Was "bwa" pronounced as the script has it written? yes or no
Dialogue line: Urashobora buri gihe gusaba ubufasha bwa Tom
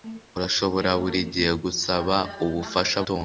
no